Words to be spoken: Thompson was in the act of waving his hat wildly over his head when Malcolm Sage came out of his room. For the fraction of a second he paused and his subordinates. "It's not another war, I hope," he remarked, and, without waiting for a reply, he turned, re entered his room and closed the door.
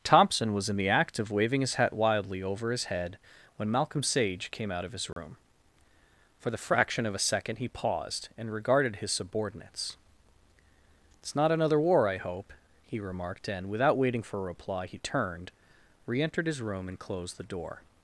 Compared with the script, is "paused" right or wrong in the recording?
right